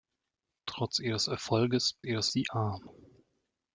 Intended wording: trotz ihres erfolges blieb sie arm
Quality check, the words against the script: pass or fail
fail